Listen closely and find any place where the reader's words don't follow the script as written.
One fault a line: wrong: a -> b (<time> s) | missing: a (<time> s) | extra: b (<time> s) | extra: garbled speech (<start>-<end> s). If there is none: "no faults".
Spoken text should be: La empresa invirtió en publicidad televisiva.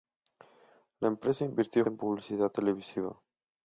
no faults